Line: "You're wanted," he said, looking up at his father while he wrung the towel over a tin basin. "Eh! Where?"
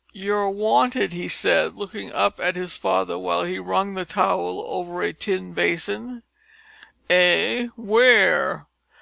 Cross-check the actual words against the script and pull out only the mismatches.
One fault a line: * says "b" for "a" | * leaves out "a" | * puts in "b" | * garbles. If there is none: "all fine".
all fine